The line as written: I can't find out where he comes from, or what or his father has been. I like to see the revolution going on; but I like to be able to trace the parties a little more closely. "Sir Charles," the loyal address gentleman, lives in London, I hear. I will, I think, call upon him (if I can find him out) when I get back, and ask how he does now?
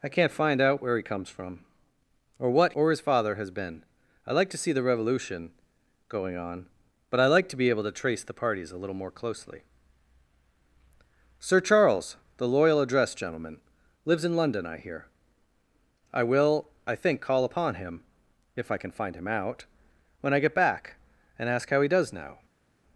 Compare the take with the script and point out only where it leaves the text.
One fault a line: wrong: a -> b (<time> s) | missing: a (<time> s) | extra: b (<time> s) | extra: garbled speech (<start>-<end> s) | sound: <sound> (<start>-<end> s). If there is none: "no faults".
no faults